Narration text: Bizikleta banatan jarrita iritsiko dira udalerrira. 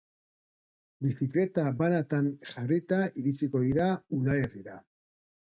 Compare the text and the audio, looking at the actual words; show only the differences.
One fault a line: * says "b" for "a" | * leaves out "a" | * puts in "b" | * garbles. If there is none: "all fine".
all fine